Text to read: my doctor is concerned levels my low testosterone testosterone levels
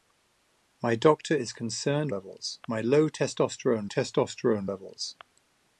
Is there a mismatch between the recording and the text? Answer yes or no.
no